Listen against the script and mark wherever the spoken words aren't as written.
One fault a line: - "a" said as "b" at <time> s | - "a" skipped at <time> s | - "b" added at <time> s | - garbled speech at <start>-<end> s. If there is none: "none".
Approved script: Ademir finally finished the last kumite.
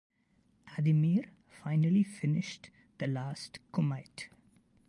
none